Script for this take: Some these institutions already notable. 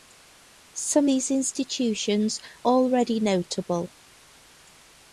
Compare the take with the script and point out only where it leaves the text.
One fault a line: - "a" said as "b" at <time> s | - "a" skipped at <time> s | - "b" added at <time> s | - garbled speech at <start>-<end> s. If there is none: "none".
none